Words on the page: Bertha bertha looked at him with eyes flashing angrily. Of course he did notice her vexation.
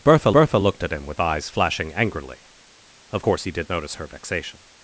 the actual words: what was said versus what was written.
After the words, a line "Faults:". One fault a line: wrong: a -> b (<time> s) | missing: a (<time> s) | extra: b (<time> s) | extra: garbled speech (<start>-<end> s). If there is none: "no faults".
Bertha bertha looked at him with eyes flashing angrily. Of course he did notice her vexation.
Faults:
no faults